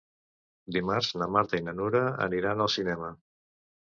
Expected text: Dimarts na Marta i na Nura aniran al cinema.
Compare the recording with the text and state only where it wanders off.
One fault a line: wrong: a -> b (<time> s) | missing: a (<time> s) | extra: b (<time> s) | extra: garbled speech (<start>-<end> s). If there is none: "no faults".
no faults